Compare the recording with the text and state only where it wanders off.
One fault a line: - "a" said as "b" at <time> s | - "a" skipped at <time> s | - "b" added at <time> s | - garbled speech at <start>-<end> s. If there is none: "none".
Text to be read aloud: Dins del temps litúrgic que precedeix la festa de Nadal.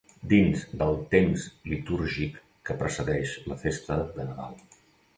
none